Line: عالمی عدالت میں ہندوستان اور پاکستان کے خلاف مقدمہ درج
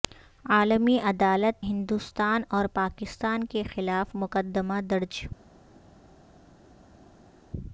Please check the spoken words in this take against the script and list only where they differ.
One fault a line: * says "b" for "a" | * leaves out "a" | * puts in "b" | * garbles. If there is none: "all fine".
* leaves out "میں"